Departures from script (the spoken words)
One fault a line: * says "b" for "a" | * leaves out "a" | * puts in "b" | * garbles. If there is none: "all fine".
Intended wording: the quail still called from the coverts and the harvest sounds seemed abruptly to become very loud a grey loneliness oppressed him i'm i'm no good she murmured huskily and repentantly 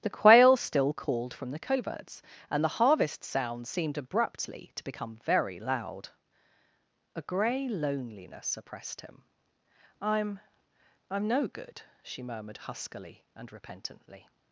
all fine